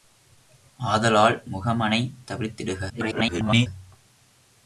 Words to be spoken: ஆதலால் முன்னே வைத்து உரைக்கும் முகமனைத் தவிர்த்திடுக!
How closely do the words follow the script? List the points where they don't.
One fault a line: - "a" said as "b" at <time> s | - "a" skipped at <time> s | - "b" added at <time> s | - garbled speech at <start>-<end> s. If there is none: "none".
- "முன்னே வைத்து உரைக்கும்" skipped at 1.4 s
- garbled speech at 2.9-3.7 s